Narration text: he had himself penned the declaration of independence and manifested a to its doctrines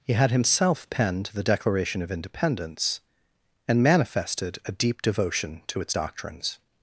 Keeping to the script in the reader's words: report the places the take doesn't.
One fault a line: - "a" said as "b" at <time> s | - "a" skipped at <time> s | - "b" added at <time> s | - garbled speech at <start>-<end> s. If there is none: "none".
- "deep devotion" added at 4.7 s